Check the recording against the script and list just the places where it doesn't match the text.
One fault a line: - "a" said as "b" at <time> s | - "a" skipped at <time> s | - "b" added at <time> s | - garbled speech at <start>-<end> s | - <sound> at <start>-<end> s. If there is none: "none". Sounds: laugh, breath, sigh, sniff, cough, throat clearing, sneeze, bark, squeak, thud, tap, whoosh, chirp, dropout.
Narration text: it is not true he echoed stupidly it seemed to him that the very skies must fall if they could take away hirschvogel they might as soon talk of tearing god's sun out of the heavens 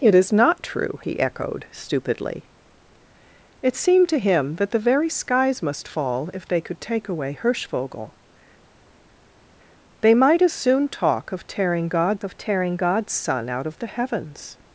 - "of tearing god's" added at 12.2 s